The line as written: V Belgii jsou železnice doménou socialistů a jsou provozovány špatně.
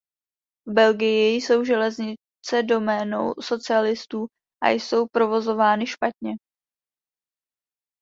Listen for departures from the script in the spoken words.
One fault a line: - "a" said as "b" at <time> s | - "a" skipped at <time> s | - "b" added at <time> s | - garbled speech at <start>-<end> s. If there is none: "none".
none